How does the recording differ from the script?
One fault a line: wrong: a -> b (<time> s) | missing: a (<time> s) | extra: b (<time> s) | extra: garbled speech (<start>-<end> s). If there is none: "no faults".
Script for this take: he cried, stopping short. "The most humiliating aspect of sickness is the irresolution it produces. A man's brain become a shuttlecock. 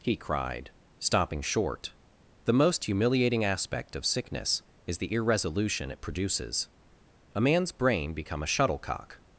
no faults